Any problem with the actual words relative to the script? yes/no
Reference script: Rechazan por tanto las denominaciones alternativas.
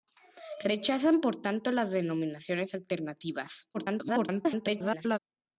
yes